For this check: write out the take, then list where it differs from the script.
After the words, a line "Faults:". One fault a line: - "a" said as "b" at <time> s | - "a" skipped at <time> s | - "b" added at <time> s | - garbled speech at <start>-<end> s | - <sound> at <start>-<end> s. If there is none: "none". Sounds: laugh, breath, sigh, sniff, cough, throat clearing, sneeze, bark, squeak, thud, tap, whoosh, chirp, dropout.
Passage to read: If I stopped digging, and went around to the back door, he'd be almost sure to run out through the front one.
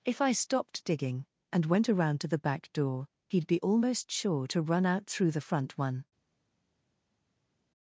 If I stopped digging, and went around to the back door, he'd be almost sure to run out through the front one.
Faults:
none